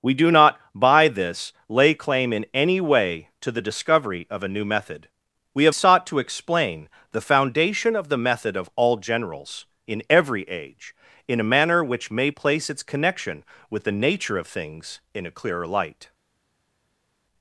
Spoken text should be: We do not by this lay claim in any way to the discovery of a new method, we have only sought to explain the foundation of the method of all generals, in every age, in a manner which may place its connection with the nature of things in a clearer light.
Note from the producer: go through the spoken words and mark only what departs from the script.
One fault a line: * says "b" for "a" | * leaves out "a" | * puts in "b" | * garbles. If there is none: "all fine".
* leaves out "only"